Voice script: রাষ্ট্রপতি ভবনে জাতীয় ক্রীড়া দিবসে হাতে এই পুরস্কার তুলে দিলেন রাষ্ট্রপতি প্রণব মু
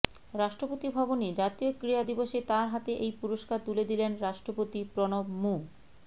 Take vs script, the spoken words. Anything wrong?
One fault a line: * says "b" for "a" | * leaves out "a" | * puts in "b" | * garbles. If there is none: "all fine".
* puts in "তাঁর"